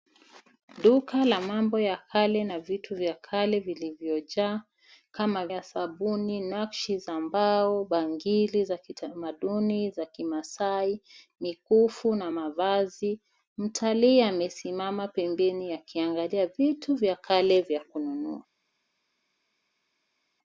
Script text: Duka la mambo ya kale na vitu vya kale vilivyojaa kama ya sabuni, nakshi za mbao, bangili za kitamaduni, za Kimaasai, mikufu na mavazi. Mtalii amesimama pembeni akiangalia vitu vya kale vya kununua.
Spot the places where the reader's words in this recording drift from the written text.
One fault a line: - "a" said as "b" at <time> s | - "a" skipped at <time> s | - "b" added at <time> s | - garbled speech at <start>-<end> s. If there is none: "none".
none